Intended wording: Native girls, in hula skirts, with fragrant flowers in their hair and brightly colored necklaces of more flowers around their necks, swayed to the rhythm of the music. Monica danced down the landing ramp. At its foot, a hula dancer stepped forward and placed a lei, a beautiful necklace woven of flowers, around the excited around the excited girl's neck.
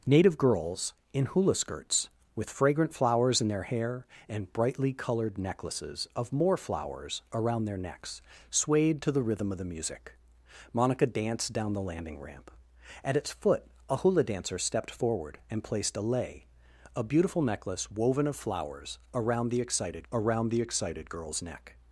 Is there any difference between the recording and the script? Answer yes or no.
no